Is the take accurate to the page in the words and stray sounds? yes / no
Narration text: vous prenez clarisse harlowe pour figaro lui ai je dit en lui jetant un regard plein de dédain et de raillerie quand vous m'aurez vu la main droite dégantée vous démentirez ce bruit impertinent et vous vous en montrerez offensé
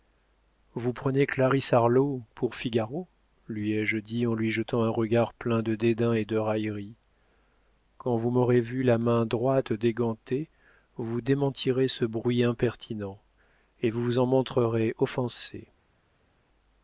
yes